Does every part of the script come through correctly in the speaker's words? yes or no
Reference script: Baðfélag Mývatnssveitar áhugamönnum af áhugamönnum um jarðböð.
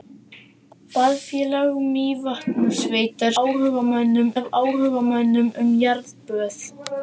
yes